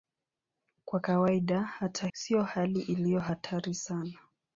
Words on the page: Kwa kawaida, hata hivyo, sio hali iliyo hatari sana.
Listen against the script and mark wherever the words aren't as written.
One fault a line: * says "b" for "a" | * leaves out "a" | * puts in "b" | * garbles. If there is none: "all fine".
* leaves out "hivyo"